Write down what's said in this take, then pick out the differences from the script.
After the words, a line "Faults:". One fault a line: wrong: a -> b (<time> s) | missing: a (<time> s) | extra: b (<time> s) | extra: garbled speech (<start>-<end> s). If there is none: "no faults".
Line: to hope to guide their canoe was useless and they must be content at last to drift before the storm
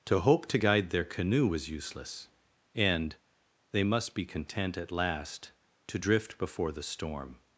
to hope to guide their canoe was useless and they must be content at last to drift before the storm
Faults:
no faults